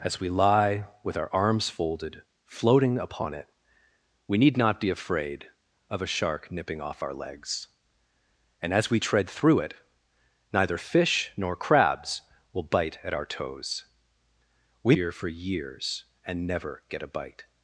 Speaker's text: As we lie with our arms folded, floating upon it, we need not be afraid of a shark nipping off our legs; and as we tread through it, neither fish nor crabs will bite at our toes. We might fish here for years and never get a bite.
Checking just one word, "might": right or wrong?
wrong